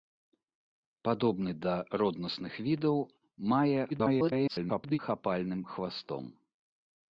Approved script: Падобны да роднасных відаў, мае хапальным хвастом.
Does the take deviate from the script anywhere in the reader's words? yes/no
yes